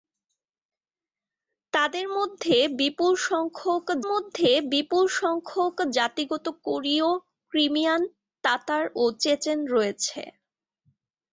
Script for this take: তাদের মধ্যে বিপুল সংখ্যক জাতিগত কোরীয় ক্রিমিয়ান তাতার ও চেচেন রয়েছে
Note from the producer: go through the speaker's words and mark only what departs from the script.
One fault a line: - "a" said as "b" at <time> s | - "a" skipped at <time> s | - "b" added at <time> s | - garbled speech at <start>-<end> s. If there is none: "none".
- "মধ্যে বিপুল সংখ্যক" added at 4.1 s